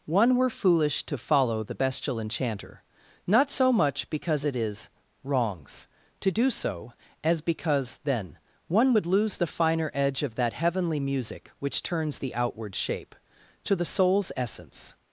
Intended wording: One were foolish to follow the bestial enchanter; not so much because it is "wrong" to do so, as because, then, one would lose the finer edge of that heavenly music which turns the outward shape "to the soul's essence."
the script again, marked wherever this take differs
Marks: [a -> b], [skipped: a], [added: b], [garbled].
One were foolish to follow the bestial enchanter; not so much because it is ["wrong" -> wrongs] to do so, as because, then, one would lose the finer edge of that heavenly music which turns the outward shape "to the soul's essence."